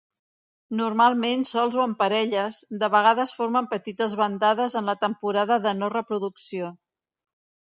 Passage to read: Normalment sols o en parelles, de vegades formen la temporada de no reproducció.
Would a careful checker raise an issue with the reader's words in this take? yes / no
yes